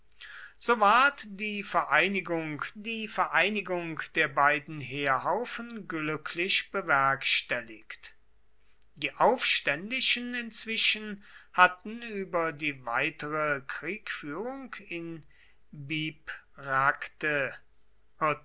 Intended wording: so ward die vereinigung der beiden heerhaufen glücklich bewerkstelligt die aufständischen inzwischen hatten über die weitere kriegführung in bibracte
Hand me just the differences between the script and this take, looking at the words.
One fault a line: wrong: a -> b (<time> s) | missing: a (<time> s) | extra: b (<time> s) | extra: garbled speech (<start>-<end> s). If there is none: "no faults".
extra: die vereinigung (2.8 s)